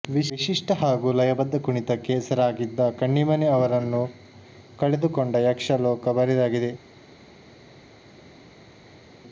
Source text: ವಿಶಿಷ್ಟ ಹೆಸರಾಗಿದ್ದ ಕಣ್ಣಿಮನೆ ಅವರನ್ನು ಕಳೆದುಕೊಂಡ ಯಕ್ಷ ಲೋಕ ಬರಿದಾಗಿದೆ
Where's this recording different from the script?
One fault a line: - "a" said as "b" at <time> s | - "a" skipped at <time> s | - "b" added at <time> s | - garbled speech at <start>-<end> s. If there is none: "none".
- "ಹಾಗೂ ಲಯಬದ್ಧ ಕುಣಿತಕ್ಕೆ" added at 0.7 s